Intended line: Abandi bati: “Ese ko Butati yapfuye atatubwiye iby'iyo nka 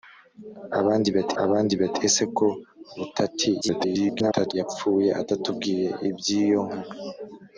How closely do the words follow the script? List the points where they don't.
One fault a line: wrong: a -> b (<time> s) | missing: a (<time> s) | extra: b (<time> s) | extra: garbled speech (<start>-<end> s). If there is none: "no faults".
extra: abandi bati (1.4 s)
extra: garbled speech (3.6-4.5 s)